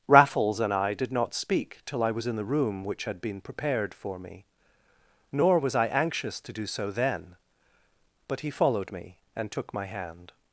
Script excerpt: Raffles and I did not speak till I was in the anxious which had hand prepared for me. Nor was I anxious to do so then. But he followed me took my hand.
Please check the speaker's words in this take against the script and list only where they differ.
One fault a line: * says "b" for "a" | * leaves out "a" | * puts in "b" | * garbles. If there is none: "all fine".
* says "room" for "anxious"
* says "been" for "hand"
* puts in "and"